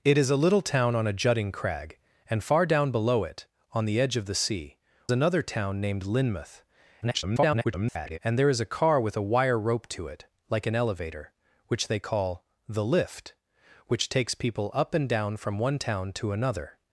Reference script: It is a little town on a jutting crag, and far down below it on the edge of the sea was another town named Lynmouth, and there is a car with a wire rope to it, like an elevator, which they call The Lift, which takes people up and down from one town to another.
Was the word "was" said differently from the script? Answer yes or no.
yes